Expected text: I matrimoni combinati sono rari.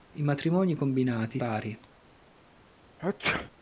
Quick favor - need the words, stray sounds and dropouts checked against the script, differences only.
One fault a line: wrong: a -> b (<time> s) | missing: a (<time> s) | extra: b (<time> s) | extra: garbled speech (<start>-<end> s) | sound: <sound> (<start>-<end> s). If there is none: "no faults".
missing: sono (1.4 s)
sound: sneeze (3.0-3.5 s)